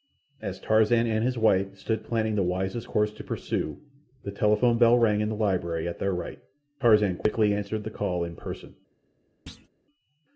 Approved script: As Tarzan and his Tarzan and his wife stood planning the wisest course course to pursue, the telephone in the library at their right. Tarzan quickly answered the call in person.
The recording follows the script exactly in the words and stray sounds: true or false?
false